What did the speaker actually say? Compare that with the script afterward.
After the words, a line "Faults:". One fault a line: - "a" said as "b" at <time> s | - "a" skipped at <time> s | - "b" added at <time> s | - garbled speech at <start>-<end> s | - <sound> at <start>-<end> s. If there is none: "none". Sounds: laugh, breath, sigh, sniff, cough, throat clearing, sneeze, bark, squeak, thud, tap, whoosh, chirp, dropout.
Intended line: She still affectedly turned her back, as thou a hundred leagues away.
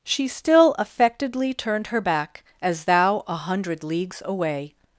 She still affectedly turned her back, as thou a hundred leagues away.
Faults:
none